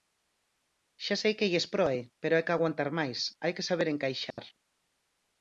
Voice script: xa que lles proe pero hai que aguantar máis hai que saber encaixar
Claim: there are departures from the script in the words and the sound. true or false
true